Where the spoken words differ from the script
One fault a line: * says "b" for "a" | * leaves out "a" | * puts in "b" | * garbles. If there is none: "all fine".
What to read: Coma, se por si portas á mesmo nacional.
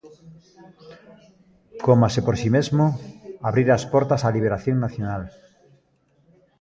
* puts in "mesmo abrira as"
* says "liberación" for "mesmo"